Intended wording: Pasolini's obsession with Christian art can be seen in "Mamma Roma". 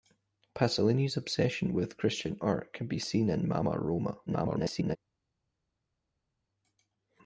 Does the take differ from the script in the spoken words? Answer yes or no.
yes